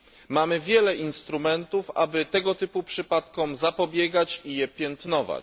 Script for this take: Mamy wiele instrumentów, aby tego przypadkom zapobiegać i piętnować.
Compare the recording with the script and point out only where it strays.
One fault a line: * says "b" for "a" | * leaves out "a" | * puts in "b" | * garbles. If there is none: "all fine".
* puts in "typu"
* puts in "je"